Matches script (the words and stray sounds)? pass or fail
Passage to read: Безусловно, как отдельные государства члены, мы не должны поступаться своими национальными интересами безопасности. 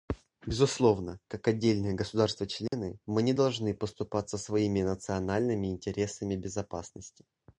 fail